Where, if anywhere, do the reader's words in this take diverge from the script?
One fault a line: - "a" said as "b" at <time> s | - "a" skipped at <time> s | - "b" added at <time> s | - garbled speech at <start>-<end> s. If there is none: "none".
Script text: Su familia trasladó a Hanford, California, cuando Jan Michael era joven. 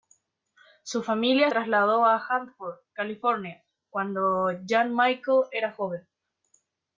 none